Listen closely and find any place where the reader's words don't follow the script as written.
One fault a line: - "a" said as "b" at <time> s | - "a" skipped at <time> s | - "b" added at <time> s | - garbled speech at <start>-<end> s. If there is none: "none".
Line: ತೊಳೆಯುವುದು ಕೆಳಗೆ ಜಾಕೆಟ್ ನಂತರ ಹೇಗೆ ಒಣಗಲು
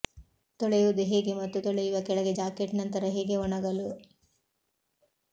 - "ಹೇಗೆ ಮತ್ತು ತೊಳೆಯುವ" added at 1.0 s